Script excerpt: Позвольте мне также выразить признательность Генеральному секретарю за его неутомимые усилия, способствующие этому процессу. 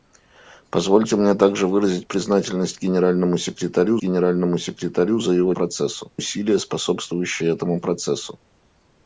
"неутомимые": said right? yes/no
no